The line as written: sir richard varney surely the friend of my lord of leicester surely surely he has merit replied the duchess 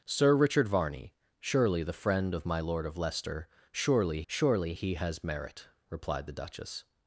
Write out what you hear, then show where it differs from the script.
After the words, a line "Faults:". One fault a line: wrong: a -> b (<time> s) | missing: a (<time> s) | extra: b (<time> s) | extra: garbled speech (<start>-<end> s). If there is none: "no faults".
sir richard varney surely the friend of my lord of leicester surely surely he has merit replied the duchess
Faults:
no faults